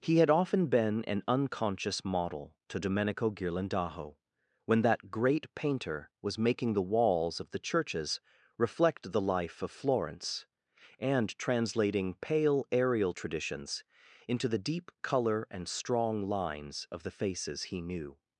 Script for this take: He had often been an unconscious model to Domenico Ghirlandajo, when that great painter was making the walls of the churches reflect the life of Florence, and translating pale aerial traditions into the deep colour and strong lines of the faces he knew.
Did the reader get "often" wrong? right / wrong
right